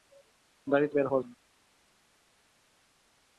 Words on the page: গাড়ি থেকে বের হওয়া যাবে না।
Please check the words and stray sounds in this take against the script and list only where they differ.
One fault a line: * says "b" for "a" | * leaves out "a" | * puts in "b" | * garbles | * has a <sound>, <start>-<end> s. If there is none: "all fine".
* leaves out "থেকে"
* leaves out "যাবে"